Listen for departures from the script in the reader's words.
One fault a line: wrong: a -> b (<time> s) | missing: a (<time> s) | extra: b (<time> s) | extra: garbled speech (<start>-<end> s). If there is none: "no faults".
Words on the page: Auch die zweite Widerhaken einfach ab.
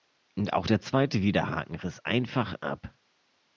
wrong: die -> der (0.6 s)
extra: riss (1.8 s)